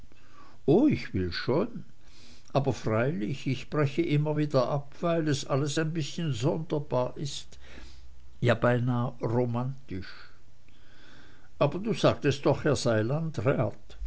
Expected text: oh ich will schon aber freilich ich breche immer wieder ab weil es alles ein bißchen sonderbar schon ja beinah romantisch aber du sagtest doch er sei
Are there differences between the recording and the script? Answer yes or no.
yes